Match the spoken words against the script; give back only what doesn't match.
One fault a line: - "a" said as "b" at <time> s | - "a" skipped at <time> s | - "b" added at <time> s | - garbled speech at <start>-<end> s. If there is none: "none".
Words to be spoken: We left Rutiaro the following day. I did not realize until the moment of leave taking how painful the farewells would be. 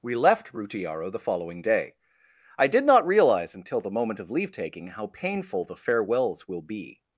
- "would" said as "will" at 6.5 s